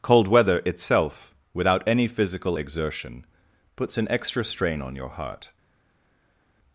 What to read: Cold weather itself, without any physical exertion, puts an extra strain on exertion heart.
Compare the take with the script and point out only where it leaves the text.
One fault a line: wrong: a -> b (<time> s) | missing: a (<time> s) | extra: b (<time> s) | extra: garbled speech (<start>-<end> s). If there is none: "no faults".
wrong: exertion -> your (4.9 s)